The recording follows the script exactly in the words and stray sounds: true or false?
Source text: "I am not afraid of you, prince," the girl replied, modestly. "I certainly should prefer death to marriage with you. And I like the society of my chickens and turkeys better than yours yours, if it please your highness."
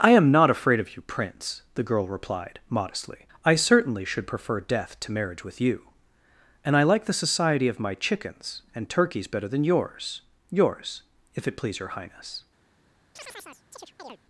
false